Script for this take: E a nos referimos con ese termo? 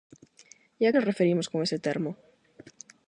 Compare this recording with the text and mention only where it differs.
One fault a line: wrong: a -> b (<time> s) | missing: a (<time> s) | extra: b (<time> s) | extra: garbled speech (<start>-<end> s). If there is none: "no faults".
no faults